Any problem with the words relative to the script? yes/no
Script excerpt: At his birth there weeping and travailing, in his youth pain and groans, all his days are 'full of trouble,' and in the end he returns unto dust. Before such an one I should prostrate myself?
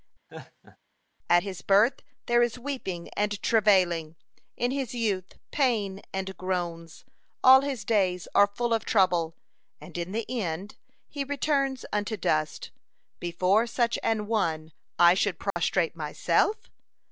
yes